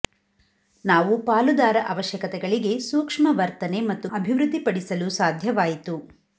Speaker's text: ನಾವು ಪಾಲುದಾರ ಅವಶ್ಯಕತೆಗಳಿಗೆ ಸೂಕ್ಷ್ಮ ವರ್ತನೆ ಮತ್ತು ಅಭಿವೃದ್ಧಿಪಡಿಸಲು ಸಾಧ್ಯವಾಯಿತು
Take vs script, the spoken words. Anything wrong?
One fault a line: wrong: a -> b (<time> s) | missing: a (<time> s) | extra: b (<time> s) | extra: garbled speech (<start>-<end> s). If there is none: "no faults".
no faults